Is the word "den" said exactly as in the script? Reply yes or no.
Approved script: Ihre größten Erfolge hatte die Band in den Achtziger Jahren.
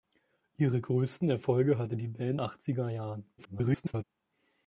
no